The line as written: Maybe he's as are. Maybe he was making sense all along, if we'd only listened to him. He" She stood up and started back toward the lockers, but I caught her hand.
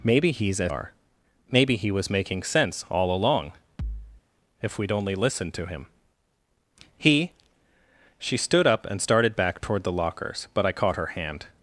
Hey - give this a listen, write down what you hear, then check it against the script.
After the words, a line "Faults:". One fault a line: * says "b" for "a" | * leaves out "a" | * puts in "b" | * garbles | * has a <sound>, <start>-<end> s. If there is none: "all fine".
Maybe he's as are. Maybe he was making sense all along, if we'd only listened to him. He" She stood up and started back toward the lockers, but I caught her hand.
Faults:
* has a thud, 3.8-4.2 s